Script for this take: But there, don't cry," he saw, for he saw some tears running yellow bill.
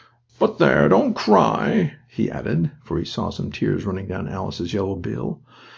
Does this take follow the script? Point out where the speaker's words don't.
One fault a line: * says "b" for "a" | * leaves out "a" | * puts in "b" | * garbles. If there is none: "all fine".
* says "added" for "saw"
* puts in "down Alice's"